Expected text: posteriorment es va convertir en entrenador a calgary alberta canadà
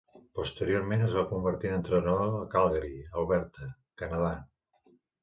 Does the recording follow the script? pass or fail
pass